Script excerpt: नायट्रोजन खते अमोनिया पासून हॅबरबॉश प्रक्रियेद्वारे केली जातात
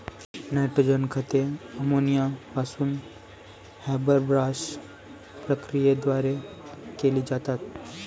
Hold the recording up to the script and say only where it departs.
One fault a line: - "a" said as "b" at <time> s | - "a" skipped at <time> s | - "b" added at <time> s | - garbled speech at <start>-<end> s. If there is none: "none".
none